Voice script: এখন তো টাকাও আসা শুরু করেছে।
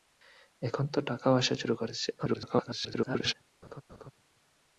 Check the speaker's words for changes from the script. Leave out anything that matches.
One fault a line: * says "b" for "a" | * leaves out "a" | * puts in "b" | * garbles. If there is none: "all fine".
* garbles